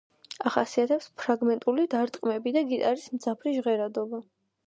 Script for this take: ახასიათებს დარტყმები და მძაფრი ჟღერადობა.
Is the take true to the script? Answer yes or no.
no